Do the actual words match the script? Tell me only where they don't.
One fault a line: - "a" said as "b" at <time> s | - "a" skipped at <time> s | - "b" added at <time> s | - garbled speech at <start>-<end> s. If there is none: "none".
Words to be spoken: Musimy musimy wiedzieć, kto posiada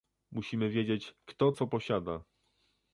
- "musimy" skipped at 0.7 s
- "co" added at 1.5 s